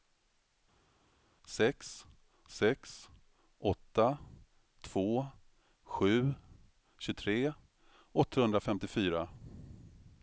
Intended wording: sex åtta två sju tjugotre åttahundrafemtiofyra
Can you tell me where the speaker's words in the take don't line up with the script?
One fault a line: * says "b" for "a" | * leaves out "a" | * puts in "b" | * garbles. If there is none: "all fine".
* puts in "sex"